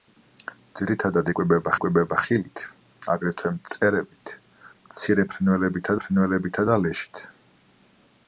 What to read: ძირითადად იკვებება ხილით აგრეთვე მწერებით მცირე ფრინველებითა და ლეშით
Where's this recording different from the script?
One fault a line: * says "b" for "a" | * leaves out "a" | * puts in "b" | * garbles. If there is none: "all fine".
* puts in "იკვებება"
* puts in "ფრინველებითა"